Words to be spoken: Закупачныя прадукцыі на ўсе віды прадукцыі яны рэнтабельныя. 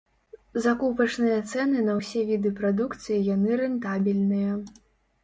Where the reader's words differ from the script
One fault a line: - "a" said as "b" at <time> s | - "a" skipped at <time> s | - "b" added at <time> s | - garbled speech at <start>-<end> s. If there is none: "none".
- "прадукцыі" said as "цэны" at 1.5 s